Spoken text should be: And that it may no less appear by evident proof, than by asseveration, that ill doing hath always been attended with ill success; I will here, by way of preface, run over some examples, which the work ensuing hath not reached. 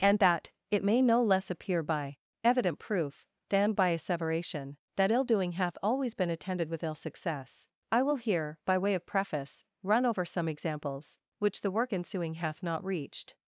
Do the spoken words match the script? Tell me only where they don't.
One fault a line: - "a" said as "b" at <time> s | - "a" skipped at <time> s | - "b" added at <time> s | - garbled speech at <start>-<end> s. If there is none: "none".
none